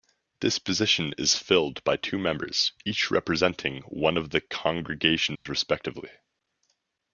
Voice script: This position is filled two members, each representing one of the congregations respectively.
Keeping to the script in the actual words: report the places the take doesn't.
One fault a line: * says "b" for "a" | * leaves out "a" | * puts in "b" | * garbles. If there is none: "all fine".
* puts in "by"